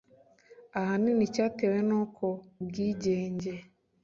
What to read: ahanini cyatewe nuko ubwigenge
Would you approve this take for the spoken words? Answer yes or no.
yes